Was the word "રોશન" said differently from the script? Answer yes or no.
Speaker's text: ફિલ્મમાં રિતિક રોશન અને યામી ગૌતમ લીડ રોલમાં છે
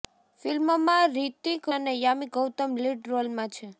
yes